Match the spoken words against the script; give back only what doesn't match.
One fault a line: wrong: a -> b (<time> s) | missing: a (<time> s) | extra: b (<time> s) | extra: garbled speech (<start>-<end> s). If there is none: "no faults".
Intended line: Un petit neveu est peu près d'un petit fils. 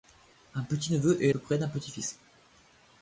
no faults